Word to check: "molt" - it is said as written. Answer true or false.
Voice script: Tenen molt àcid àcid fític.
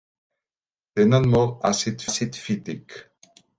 true